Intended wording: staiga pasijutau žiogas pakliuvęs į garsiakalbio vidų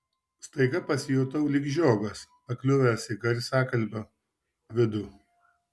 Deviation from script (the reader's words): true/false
true